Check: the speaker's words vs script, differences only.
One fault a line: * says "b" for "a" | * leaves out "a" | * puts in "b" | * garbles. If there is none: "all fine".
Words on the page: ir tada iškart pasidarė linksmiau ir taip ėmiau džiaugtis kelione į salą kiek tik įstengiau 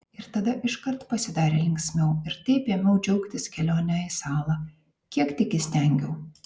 all fine